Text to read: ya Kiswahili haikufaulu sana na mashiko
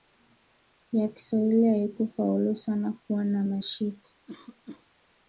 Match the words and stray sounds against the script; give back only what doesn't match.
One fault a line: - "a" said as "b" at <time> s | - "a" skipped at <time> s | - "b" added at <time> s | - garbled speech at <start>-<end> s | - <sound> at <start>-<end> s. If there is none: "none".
- "kuwa" added at 2.9 s
- cough at 4.3-4.9 s